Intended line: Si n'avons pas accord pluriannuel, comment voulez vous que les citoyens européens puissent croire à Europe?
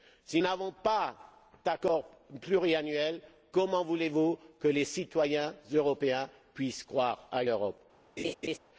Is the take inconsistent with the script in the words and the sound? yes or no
yes